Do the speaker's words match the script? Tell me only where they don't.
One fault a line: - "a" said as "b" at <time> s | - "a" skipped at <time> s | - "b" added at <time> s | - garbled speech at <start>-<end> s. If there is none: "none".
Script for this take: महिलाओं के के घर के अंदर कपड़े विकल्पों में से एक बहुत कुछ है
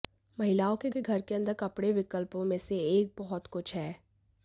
none